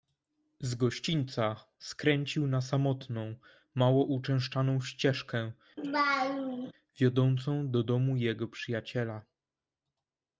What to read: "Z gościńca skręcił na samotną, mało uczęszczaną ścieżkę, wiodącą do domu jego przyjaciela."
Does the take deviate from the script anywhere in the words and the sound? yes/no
yes